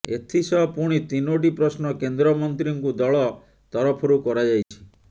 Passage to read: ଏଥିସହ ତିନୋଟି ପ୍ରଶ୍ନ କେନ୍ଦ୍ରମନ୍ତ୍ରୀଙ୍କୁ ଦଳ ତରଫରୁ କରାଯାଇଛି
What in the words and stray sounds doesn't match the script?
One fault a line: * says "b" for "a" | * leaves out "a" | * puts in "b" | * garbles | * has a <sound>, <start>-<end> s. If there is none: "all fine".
* puts in "ପୁଣି"
* has a dropout, 4.6-4.7 s